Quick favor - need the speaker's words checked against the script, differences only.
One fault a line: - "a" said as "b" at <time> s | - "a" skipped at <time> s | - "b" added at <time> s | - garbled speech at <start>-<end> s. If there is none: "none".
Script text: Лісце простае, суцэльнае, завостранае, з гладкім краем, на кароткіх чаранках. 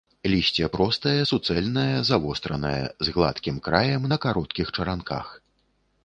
none